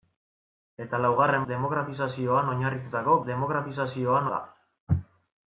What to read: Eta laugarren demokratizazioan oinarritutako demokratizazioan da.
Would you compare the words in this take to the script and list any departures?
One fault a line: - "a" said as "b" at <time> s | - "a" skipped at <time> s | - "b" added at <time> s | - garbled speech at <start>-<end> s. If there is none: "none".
none